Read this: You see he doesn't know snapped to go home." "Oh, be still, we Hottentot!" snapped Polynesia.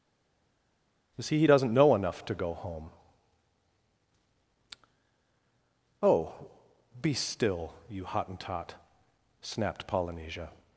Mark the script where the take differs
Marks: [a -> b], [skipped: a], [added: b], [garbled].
You see he doesn't know [snapped -> enough] to go home." "Oh, be still, [we -> you] Hottentot!" snapped Polynesia.